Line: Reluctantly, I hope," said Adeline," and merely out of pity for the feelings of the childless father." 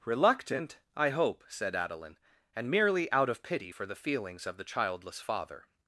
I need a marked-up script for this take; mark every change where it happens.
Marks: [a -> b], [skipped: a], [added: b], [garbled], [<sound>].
[Reluctantly, -> Reluctant] I hope," said Adeline," and merely out of pity for the feelings of the childless father."